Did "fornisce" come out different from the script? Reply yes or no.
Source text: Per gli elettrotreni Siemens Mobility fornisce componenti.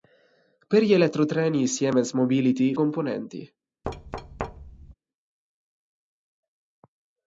yes